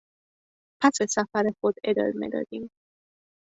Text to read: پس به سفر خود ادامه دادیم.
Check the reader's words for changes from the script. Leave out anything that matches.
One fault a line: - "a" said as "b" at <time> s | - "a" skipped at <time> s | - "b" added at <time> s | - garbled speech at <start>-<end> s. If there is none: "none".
none